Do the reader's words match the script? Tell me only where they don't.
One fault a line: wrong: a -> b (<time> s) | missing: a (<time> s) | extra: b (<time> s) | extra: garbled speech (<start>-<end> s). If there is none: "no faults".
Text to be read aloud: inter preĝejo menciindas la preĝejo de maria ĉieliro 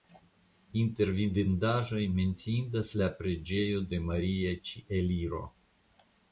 wrong: preĝejo -> vidindaĵoj (1.2 s)